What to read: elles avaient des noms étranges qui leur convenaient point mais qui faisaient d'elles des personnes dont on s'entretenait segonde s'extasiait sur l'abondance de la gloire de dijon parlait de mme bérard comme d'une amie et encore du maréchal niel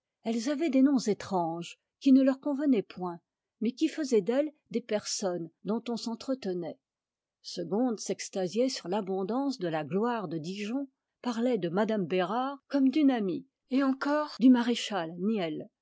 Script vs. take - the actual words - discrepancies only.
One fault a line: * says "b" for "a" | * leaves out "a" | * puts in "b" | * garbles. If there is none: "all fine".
* puts in "ne"